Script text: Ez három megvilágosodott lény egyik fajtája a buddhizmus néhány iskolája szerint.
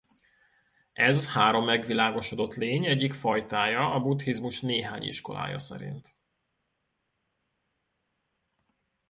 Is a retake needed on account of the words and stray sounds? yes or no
no